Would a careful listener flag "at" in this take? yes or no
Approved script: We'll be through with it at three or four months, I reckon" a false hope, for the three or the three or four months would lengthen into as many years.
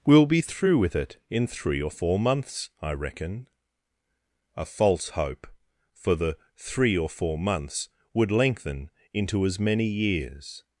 yes